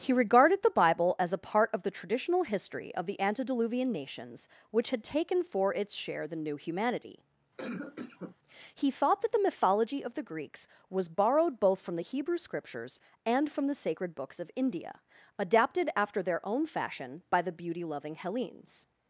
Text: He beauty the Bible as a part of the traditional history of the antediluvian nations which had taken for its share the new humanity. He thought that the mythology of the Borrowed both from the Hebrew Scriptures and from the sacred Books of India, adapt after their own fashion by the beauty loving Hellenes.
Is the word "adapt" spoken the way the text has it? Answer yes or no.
no